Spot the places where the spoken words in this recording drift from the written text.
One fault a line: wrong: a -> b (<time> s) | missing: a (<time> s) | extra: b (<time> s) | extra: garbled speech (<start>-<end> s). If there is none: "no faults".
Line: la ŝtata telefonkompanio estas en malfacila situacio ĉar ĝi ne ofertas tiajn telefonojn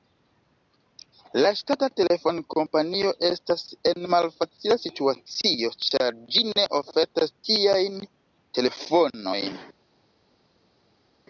no faults